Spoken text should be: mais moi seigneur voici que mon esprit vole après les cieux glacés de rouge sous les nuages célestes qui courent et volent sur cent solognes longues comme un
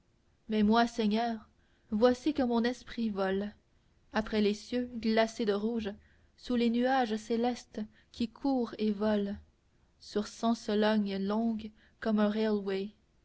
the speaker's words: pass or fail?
pass